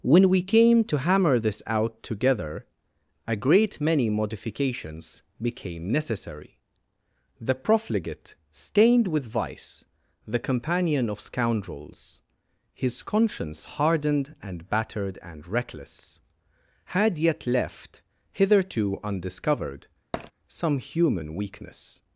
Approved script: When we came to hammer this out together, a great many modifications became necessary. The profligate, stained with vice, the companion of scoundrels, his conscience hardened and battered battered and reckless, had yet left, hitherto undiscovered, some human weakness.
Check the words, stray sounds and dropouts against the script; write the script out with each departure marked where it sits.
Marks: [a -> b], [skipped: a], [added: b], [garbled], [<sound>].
When we came to hammer this out together, a great many modifications became necessary. The profligate, stained with vice, the companion of scoundrels, his conscience hardened and battered [skipped: battered] and reckless, had yet left, hitherto undiscovered, [tap] some human weakness.